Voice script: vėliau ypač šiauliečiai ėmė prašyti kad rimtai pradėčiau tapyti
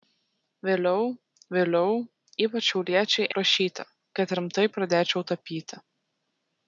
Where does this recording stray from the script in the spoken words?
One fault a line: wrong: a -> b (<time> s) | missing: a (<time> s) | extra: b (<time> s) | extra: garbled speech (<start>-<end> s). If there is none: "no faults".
extra: vėliau (1.5 s)
missing: ėmė (3.3 s)